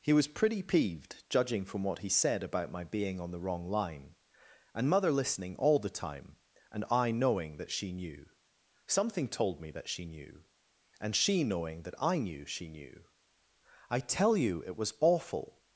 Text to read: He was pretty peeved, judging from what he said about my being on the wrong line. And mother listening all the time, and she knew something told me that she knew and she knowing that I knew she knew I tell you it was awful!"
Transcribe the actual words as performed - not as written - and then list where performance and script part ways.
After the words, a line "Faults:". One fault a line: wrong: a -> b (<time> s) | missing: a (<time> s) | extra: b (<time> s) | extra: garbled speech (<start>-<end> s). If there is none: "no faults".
He was pretty peeved, judging from what he said about my being on the wrong line. And mother listening all the time, and I knowing that she knew something told me that she knew and she knowing that I knew she knew I tell you it was awful!"
Faults:
extra: I knowing that (6.9 s)